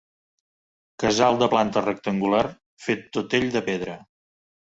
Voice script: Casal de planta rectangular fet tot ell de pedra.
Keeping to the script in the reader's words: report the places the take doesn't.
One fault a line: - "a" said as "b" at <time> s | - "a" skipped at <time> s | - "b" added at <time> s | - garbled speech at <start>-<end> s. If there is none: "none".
none